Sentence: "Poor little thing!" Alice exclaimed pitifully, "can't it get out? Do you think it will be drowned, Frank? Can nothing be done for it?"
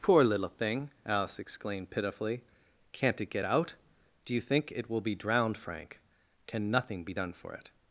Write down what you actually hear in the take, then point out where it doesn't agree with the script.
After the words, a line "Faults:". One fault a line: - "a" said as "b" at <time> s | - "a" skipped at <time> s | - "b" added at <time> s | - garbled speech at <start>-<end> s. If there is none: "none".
"Poor little thing!" Alice exclaimed pitifully, "can't it get out? Do you think it will be drowned, Frank? Can nothing be done for it?"
Faults:
none